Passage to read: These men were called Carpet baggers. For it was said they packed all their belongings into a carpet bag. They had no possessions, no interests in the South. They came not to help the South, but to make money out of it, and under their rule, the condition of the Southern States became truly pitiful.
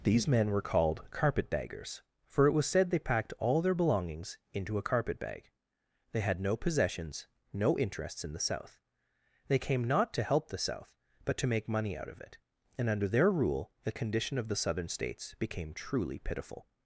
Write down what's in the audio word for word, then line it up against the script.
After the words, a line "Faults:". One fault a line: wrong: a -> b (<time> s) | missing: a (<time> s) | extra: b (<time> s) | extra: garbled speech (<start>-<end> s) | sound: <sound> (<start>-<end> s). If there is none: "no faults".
These men were called Carpet baggers. For it was said they packed all their belongings into a carpet bag. They had no possessions, no interests in the South. They came not to help the South, but to make money out of it, and under their rule, the condition of the Southern States became truly pitiful.
Faults:
no faults